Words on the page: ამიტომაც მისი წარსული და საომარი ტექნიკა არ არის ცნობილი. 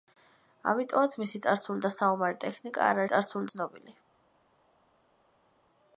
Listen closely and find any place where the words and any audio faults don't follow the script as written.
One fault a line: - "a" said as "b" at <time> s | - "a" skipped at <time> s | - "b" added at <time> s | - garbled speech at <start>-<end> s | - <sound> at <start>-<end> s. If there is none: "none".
- "არის" said as "წარსული" at 3.1 s